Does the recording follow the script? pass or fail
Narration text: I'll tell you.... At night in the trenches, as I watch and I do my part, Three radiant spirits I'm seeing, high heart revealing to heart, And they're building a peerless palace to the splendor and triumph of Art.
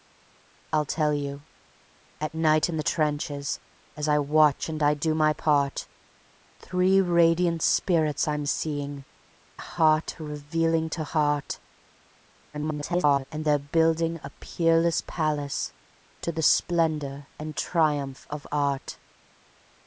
fail